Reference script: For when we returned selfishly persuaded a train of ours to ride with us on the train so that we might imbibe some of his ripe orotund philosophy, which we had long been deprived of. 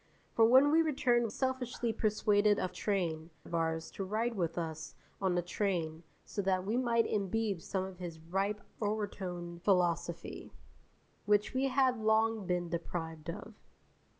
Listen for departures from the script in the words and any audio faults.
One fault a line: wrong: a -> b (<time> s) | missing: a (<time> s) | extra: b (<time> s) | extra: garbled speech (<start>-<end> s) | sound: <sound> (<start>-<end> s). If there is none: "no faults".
no faults